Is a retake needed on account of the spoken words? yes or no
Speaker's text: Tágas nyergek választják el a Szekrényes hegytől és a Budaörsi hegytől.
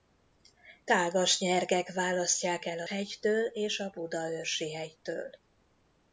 yes